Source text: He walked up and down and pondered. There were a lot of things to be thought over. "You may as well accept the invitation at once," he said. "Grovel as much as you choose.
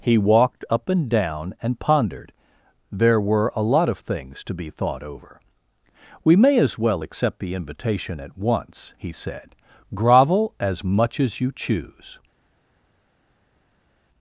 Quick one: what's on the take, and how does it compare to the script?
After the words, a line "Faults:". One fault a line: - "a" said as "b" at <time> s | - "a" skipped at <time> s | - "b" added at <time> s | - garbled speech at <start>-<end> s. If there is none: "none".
He walked up and down and pondered. There were a lot of things to be thought over. "We may as well accept the invitation at once," he said. "Grovel as much as you choose.
Faults:
- "You" said as "We" at 6.2 s